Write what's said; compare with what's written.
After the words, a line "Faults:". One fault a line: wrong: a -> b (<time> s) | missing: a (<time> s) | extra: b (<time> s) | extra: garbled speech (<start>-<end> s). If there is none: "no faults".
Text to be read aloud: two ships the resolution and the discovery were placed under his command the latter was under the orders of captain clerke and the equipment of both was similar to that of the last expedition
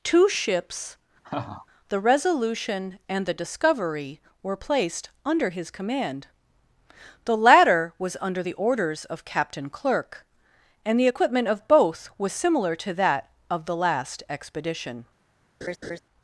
two ships the resolution and the discovery were placed under his command the latter was under the orders of captain clerke and the equipment of both was similar to that of the last expedition
Faults:
no faults